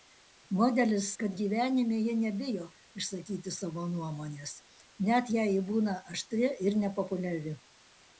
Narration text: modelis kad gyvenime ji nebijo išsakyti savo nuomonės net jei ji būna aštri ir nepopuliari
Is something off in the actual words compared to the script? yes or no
no